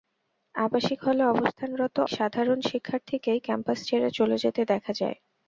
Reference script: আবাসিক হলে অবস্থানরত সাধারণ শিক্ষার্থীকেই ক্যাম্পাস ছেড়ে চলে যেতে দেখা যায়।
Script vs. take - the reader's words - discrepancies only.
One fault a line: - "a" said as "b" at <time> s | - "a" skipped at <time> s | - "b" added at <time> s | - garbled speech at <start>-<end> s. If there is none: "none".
none